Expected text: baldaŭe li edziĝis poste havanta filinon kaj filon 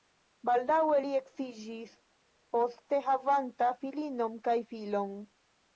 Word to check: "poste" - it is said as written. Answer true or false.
true